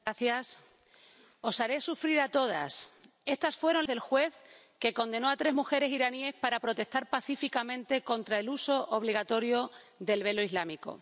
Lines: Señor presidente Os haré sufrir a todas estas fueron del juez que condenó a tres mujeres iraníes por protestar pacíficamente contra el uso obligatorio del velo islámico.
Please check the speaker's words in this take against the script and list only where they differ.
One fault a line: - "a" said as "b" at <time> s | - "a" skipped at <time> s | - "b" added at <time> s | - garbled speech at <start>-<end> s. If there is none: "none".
none